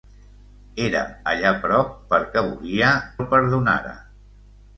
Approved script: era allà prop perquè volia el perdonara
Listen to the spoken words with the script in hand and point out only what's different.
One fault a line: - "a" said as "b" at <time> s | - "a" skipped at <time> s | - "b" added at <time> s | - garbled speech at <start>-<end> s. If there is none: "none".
none